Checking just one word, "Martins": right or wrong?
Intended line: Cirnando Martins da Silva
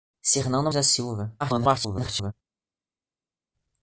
wrong